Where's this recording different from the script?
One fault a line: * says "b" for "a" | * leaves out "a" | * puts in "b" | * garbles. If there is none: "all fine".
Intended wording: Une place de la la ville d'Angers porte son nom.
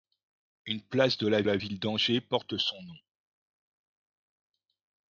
all fine